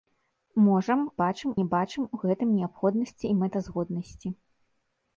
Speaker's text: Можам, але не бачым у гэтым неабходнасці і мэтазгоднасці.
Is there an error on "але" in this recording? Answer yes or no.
yes